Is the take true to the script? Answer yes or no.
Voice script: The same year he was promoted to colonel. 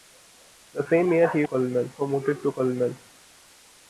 no